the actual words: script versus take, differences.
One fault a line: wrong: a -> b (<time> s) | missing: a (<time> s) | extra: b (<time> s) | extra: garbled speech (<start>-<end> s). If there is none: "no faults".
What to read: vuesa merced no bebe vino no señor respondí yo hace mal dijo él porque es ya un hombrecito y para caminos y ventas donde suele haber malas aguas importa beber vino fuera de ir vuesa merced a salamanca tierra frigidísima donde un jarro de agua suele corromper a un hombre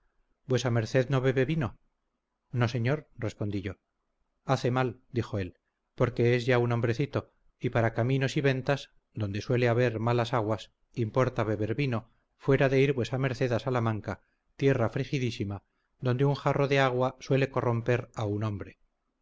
no faults